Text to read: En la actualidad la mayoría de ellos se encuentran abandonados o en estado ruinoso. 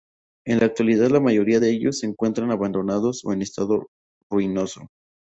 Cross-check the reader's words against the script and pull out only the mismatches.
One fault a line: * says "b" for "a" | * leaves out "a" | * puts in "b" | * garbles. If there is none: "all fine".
all fine